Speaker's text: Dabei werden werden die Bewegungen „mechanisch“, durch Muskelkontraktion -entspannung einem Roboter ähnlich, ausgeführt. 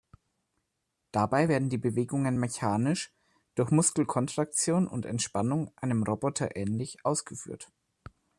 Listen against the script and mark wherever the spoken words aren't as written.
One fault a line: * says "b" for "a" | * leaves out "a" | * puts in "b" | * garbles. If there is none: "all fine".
* leaves out "werden"
* puts in "und"